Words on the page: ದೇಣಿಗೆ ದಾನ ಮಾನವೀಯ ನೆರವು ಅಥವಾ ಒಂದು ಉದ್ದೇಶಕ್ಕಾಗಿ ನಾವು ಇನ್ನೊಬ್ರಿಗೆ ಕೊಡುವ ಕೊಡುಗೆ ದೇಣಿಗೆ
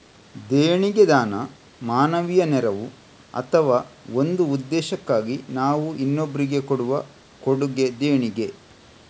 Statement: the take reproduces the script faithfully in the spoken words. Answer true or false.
true